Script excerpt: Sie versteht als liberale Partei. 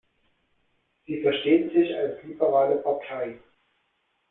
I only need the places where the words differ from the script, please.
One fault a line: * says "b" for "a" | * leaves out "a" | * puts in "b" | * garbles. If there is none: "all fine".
* puts in "sich"